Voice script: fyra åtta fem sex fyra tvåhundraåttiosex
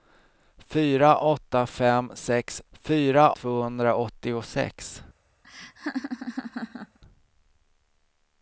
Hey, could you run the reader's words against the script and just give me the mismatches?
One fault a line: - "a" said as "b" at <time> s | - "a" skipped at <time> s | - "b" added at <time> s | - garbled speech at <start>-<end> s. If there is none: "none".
none